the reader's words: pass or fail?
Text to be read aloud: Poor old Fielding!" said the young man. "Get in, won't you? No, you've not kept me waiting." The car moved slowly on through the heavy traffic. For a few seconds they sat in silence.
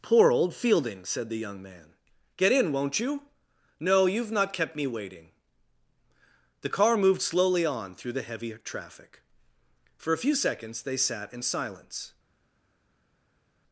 pass